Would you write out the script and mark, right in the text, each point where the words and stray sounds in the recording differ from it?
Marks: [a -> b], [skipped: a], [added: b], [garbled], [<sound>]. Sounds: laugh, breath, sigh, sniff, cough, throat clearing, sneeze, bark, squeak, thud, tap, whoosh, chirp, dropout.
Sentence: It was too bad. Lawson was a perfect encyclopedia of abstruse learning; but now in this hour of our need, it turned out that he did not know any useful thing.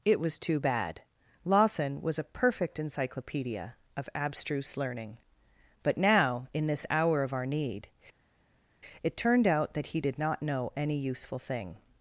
It was too bad. Lawson was a perfect encyclopedia of abstruse learning; but now in this hour of our need, it turned out that he did not know any useful thing.